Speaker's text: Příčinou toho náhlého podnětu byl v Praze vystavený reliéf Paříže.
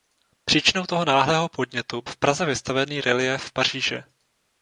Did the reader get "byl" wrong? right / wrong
wrong